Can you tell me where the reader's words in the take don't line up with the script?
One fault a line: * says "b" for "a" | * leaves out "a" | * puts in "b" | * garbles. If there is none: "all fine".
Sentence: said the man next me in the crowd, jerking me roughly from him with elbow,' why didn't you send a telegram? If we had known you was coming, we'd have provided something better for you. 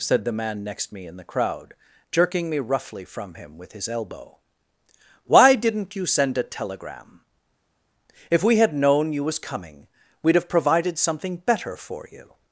* puts in "his"